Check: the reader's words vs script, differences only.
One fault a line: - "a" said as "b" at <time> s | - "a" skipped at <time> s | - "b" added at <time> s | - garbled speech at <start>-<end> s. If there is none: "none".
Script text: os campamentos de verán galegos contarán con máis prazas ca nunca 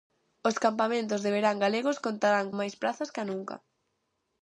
- "con" skipped at 2.5 s